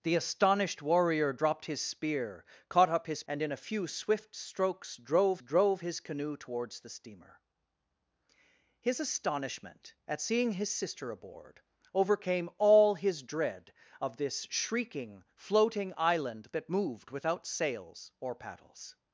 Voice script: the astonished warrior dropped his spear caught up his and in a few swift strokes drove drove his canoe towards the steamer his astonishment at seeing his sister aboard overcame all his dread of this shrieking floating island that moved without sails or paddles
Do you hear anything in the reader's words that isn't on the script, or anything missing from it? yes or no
no